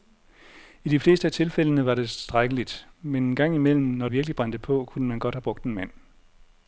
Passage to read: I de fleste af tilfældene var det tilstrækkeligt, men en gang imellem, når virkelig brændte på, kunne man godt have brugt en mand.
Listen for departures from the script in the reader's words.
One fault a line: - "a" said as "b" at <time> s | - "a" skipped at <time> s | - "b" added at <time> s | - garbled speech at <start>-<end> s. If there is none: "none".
none